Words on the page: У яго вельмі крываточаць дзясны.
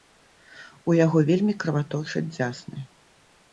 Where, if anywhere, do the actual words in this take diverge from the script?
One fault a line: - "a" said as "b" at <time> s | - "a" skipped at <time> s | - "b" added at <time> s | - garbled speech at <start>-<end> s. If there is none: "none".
none